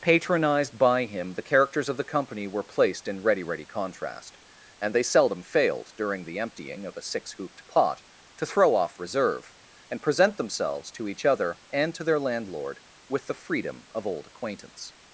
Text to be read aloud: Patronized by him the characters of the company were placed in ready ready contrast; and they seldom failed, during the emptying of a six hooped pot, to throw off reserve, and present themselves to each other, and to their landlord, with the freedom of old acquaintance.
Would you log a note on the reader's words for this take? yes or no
no